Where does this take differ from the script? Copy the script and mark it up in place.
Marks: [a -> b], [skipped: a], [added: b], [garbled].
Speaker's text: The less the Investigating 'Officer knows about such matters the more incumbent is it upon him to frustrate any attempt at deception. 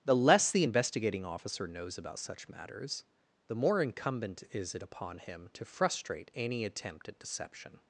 The less the Investigating 'Officer knows about such matters the more incumbent is it upon him to frustrate any attempt at deception.